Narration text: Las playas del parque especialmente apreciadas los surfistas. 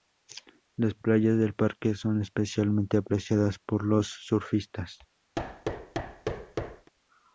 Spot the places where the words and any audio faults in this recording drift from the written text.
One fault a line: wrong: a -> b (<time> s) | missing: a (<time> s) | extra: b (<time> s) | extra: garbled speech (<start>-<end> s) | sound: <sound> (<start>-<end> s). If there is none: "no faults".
extra: son (1.9 s)
extra: por (3.6 s)
sound: thud (5.3-6.9 s)